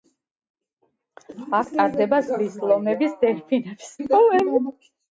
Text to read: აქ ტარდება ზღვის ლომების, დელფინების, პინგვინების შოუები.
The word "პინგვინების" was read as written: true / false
false